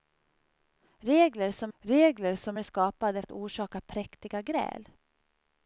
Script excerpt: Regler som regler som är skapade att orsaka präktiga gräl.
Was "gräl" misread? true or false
false